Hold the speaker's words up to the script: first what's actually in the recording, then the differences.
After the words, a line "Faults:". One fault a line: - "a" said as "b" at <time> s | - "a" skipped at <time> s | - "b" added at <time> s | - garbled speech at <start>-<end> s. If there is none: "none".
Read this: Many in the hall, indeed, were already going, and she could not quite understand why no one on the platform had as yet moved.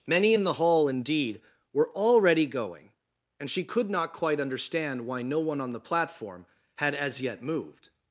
Many in the hall, indeed, were already going, and she could not quite understand why no one on the platform had as yet moved.
Faults:
none